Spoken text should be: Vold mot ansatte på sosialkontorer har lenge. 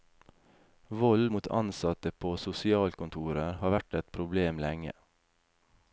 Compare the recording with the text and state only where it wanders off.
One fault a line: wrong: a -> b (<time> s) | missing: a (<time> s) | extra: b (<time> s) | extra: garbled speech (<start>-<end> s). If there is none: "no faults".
extra: vært et problem (3.7 s)